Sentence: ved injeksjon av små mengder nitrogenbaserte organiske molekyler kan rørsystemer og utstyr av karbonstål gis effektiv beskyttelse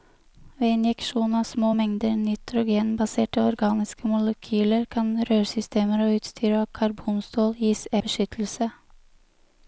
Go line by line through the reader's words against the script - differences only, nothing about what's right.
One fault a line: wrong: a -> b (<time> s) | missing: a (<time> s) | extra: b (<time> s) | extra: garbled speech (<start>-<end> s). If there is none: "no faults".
missing: effektiv (7.9 s)